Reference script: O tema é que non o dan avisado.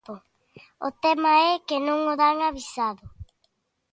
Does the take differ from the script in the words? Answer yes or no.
no